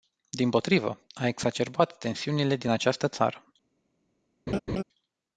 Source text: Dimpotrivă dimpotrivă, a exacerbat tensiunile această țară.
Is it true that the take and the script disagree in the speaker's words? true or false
true